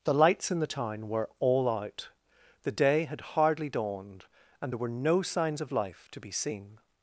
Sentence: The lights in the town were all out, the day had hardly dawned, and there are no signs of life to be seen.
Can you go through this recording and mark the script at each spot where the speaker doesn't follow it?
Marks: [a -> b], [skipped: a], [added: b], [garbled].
The lights in the town were all out, the day had hardly dawned, and there [are -> were] no signs of life to be seen.